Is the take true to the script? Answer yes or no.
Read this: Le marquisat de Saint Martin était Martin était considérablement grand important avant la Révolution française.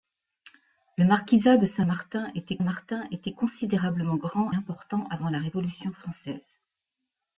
yes